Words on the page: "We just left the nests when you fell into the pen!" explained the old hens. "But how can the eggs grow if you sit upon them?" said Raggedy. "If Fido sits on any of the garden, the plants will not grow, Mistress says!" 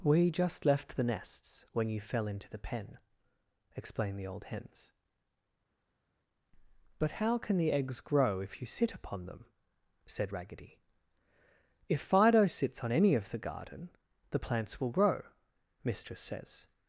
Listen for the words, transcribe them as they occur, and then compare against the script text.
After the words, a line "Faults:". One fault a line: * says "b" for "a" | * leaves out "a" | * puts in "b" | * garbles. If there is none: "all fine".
"We just left the nests when you fell into the pen!" explained the old hens. "But how can the eggs grow if you sit upon them?" said Raggedy. "If Fido sits on any of the garden, the plants will grow, Mistress says!"
Faults:
* leaves out "not"